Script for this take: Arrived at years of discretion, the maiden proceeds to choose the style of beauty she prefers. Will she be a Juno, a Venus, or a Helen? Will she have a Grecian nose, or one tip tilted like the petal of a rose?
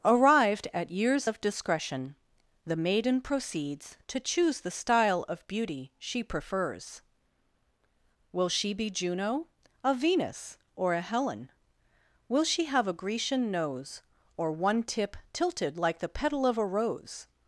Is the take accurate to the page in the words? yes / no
no